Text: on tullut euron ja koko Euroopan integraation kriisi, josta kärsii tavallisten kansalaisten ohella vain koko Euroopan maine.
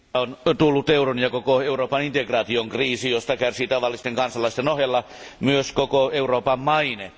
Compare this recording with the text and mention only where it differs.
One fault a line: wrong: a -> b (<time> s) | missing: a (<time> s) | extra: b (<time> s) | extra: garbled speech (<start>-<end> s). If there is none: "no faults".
wrong: vain -> myös (5.4 s)